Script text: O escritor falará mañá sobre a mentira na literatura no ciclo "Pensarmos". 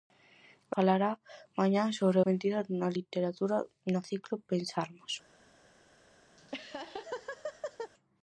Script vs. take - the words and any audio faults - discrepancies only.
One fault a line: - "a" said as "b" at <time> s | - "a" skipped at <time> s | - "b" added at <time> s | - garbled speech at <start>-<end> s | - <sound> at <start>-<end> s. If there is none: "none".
- "escritor" skipped at 0.7 s
- "a" skipped at 2.2 s
- laugh at 6.4-7.9 s